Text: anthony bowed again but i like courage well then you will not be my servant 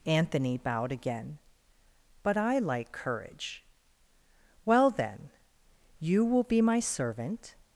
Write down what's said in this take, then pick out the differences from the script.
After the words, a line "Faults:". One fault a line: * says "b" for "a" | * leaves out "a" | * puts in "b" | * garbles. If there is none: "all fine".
anthony bowed again but i like courage well then you will be my servant
Faults:
* leaves out "not"